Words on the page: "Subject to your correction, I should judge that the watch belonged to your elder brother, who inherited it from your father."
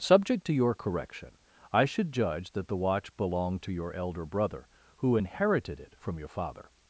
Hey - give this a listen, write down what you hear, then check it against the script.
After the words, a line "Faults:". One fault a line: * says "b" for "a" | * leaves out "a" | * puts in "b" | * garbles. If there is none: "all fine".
"Subject to your correction, I should judge that the watch belonged to your elder brother, who inherited it from your father."
Faults:
all fine